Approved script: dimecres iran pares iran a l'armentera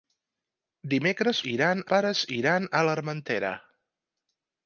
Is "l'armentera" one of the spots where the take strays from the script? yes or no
no